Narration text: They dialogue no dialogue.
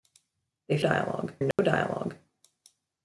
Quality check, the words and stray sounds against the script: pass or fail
fail